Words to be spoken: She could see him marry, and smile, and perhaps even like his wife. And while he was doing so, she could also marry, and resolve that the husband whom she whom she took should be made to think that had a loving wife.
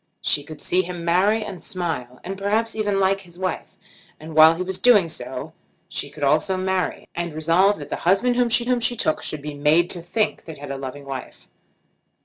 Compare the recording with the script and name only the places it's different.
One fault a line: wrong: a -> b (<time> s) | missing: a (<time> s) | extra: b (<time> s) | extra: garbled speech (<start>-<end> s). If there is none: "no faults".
no faults